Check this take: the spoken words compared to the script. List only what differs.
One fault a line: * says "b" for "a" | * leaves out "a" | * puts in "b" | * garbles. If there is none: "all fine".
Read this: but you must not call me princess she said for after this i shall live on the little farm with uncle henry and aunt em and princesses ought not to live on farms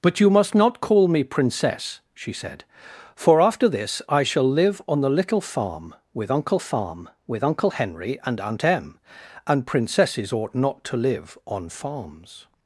* puts in "farm with uncle"